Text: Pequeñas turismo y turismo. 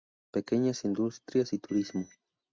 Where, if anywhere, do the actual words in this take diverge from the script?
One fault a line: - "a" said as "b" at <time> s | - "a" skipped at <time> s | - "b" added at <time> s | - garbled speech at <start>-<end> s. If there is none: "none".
- "turismo" said as "industrias" at 0.8 s